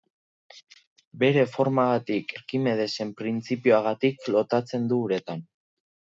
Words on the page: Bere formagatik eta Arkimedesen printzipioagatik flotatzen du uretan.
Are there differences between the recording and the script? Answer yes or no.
yes